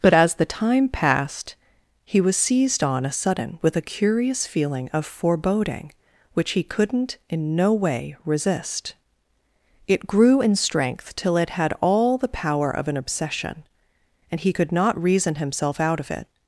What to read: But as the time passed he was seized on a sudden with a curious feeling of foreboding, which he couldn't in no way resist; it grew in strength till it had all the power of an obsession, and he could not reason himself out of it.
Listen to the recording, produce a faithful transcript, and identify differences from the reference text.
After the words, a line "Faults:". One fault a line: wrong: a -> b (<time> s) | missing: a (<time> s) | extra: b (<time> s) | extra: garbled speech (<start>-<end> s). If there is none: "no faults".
But as the time passed he was seized on a sudden with a curious feeling of foreboding, which he couldn't in no way resist; it grew in strength till it had all the power of an obsession, and he could not reason himself out of it.
Faults:
no faults